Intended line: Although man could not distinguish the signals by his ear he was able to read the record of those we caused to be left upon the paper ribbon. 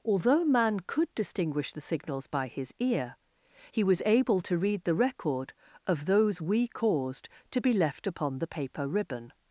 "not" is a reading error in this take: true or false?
true